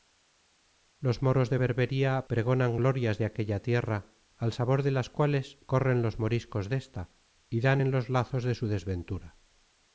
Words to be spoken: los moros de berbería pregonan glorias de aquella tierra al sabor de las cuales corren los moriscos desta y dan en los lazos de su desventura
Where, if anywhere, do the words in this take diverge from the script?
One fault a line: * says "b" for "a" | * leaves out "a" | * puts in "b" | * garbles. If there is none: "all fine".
all fine